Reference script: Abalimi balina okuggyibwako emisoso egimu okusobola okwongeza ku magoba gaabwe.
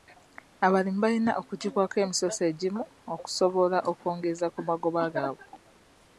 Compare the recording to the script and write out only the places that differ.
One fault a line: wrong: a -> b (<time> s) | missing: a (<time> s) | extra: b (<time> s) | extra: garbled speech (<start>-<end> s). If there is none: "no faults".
no faults